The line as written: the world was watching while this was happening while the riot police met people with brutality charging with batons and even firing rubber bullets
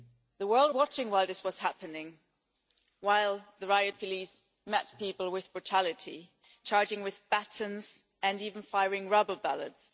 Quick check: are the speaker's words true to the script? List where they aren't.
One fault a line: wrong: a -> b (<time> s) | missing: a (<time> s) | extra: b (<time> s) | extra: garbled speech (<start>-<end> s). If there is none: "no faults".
missing: was (0.7 s)